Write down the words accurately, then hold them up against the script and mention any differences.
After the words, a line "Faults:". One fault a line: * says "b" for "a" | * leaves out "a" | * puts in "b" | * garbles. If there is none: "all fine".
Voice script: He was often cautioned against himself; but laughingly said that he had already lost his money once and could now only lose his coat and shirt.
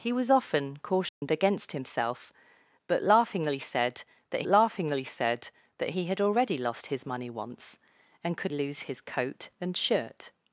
He was often cautioned against himself; but laughingly said that laughingly said that he had already lost his money once and could lose his coat and shirt.
Faults:
* puts in "laughingly said that"
* leaves out "now only"